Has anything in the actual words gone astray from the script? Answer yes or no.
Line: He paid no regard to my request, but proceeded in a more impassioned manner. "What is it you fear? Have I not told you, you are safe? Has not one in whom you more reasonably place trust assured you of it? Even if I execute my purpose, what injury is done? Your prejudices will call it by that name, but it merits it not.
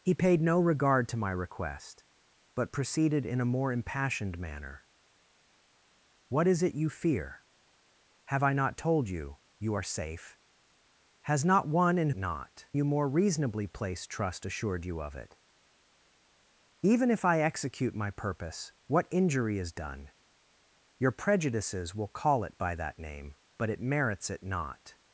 yes